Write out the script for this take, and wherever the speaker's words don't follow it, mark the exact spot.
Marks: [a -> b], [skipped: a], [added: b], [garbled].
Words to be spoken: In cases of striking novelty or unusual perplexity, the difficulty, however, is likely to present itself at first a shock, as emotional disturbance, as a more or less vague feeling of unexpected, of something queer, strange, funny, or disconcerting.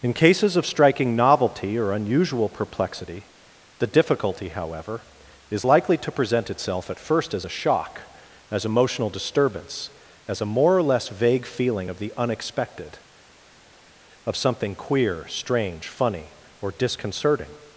In cases of striking novelty or unusual perplexity, the difficulty, however, is likely to present itself at first [added: as] a shock, as emotional disturbance, as a more or less vague feeling of [added: the] unexpected, of something queer, strange, funny, or disconcerting.